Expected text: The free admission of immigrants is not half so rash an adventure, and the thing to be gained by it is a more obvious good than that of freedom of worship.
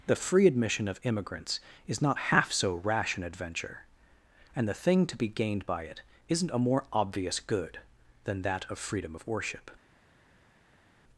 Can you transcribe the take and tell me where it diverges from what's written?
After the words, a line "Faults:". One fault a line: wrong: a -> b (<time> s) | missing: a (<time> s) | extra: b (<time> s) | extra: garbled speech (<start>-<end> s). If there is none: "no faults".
The free admission of immigrants is not half so rash an adventure, and the thing to be gained by it isn't a more obvious good than that of freedom of worship.
Faults:
wrong: is -> isn't (6.3 s)